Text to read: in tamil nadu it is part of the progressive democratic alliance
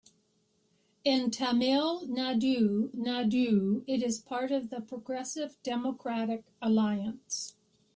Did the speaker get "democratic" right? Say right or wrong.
right